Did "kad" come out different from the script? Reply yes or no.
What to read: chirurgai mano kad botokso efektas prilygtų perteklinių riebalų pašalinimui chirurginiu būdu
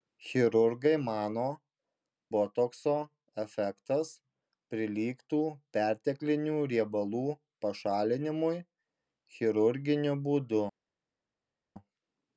yes